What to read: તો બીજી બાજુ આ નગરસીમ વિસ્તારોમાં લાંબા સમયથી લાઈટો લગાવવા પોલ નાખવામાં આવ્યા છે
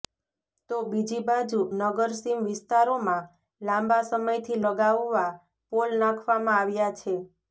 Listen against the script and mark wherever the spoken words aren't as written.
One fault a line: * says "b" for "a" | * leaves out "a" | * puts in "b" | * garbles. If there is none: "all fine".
* leaves out "આ"
* leaves out "લાઈટો"